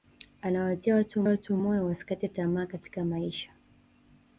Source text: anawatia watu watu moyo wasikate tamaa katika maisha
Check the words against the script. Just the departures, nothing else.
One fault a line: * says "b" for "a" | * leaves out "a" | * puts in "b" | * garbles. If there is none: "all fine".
all fine